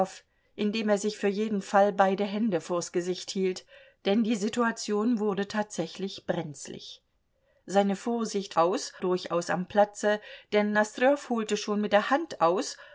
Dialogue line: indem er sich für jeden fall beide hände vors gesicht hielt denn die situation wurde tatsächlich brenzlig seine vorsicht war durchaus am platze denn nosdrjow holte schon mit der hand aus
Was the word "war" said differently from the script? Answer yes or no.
yes